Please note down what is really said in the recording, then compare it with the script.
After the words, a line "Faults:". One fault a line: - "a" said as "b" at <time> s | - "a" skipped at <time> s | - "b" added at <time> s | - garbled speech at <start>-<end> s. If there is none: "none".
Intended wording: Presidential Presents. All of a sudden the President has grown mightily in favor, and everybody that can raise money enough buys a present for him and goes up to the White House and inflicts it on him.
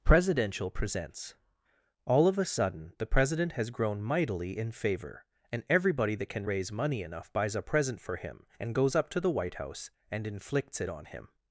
Presidential Presents. All of a sudden the President has grown mightily in favor, and everybody that can raise money enough buys a present for him and goes up to the White House and inflicts it on him.
Faults:
none